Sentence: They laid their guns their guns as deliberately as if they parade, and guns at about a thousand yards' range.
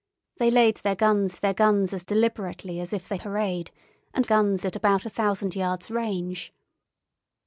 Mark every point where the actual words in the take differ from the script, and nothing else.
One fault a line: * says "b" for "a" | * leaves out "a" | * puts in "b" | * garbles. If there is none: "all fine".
all fine